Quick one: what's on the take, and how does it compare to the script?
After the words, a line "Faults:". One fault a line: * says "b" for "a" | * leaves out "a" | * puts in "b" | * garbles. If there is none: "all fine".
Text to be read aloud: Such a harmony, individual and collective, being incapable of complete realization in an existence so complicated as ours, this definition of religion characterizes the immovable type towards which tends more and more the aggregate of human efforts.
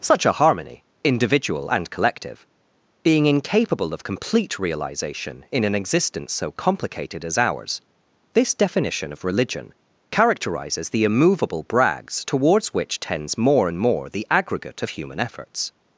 Such a harmony, individual and collective, being incapable of complete realization in an existence so complicated as ours, this definition of religion characterizes the immovable brags towards which tends more and more the aggregate of human efforts.
Faults:
* says "brags" for "type"